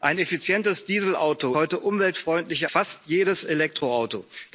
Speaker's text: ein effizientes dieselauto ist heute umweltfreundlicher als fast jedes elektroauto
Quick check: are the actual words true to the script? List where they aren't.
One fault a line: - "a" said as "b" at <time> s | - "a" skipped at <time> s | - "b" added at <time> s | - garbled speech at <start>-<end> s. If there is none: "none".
- "ist" skipped at 1.6 s
- "als" skipped at 2.7 s